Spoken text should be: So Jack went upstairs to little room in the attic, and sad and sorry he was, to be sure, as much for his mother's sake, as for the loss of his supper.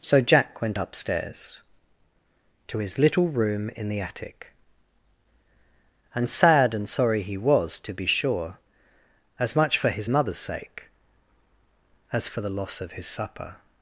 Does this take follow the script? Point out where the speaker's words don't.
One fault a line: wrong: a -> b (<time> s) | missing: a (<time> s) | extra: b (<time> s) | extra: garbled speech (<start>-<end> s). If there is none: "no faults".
extra: his (2.8 s)